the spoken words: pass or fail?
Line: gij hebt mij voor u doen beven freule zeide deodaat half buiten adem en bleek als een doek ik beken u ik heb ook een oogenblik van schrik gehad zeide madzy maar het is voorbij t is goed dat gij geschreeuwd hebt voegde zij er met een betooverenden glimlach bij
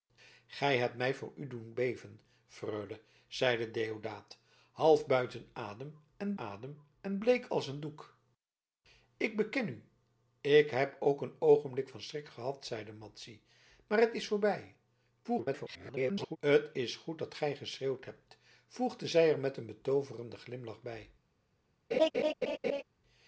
fail